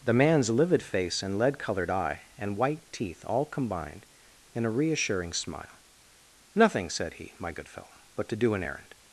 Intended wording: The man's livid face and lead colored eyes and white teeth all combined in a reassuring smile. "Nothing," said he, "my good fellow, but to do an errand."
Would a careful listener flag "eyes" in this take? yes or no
yes